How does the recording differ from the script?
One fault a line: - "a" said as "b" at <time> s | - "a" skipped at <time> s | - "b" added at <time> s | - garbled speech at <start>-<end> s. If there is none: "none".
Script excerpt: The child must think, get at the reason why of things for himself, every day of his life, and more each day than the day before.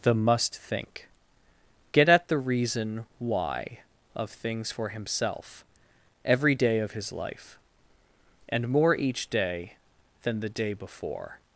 - "child" skipped at 0.1 s